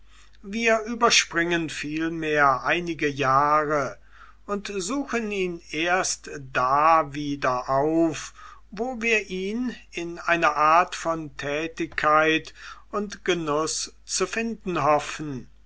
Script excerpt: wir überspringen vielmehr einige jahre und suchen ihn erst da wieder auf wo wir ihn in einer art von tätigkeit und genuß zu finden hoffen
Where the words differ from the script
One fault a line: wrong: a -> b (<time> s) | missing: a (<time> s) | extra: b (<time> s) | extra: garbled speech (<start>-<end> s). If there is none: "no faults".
no faults